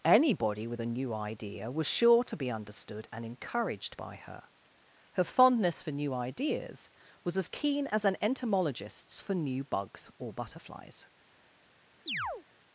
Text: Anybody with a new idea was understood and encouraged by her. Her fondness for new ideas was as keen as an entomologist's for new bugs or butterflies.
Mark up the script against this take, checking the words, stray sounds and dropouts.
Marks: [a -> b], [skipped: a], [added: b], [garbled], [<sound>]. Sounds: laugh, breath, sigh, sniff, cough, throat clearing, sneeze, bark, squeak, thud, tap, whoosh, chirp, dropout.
Anybody with a new idea was [added: sure to be] understood and encouraged by her. Her fondness for new ideas was as keen as an entomologist's for new bugs or butterflies. [chirp]